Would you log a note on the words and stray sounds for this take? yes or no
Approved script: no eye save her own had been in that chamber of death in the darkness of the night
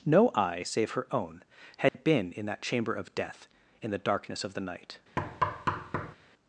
yes